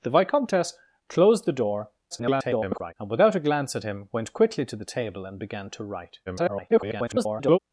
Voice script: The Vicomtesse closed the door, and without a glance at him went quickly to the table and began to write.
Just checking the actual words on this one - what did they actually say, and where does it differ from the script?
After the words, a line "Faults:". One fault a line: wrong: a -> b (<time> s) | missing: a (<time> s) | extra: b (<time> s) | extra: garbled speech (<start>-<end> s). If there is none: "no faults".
The Vicomtesse closed the door, [garbled] and without a glance at him went quickly to the table and began to write. [garbled]
Faults:
extra: garbled speech (2.1-2.9 s)
extra: garbled speech (6.3-7.6 s)